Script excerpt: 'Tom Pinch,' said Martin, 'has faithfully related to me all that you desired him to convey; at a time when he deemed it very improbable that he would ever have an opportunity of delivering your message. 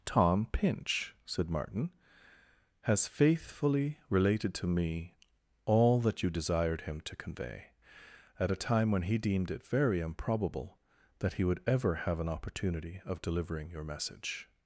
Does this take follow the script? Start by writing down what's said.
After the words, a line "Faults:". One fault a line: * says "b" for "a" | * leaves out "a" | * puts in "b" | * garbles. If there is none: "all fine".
'Tom Pinch,' said Martin, 'has faithfully related to me all that you desired him to convey; at a time when he deemed it very improbable that he would ever have an opportunity of delivering your message.
Faults:
all fine